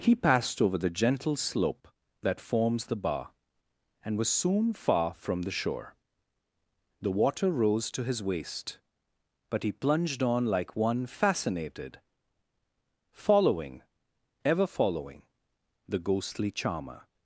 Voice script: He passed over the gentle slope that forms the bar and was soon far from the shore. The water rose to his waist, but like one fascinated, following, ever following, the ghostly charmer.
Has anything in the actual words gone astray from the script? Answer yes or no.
yes